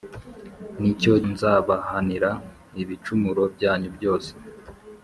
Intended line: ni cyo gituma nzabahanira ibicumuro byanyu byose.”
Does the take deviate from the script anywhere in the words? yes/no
yes